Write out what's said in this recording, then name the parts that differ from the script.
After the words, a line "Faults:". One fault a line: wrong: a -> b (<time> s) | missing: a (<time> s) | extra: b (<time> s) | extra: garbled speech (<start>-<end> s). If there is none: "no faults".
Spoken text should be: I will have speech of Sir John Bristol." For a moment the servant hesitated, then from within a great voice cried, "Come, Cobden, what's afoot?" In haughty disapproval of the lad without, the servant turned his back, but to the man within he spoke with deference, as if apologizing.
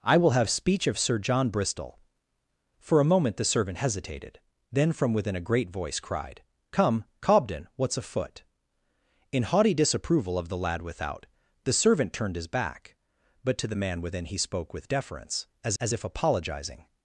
I will have speech of Sir John Bristol." For a moment the servant hesitated, then from within a great voice cried, "Come, Cobden, what's afoot?" In haughty disapproval of the lad without, the servant turned his back, but to the man within he spoke with deference, as as if apologizing.
Faults:
extra: as (15.8 s)